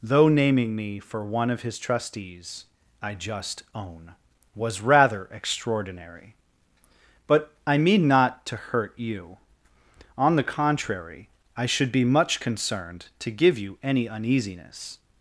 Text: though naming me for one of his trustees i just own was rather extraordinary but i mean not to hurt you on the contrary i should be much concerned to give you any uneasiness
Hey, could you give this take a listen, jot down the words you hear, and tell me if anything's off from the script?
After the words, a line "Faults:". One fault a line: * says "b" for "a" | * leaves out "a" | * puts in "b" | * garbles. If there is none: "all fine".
though naming me for one of his trustees i just own was rather extraordinary but i mean not to hurt you on the contrary i should be much concerned to give you any uneasiness
Faults:
all fine